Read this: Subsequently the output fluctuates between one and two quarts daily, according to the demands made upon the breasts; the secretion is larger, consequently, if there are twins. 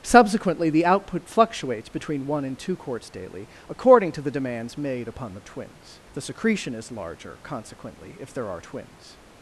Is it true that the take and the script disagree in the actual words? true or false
true